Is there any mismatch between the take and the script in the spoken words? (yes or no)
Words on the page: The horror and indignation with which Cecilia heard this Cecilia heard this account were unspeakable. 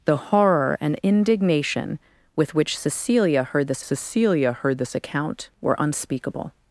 no